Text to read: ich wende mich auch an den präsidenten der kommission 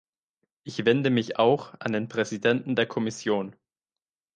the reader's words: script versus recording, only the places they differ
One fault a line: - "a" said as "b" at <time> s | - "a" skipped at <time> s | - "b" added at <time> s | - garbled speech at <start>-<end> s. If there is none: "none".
none